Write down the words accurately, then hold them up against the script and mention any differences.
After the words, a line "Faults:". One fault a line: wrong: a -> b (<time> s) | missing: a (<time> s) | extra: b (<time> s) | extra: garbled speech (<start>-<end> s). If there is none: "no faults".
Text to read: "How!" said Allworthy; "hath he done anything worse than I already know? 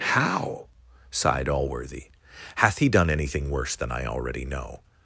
"How!" sighed Allworthy; "hath he done anything worse than I already know?
Faults:
wrong: said -> sighed (1.1 s)